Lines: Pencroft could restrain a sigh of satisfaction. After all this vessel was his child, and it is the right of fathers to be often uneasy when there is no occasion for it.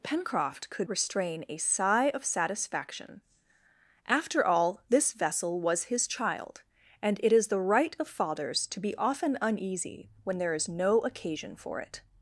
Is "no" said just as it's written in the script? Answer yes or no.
yes